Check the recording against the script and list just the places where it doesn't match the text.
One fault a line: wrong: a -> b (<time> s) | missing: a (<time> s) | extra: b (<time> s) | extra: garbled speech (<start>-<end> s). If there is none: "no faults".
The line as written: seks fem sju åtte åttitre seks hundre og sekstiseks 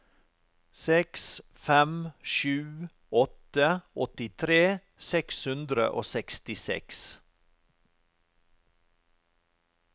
no faults